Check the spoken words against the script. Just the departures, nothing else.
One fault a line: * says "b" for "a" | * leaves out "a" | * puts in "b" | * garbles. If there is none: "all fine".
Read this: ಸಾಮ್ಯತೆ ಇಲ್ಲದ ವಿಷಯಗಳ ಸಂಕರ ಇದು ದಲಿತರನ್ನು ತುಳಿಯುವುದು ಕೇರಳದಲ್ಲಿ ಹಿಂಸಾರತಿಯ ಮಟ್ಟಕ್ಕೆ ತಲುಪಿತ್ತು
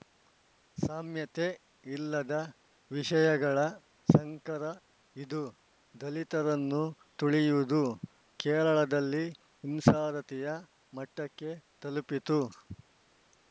all fine